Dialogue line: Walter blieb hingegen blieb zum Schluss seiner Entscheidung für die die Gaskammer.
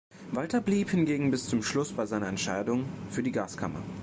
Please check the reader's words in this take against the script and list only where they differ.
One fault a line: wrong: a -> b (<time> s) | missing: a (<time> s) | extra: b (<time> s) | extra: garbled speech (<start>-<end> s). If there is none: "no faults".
wrong: blieb -> bis (1.3 s)
extra: bei (1.9 s)
missing: die (3.3 s)